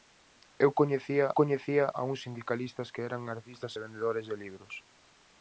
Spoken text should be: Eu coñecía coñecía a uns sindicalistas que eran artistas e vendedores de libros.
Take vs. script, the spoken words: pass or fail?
pass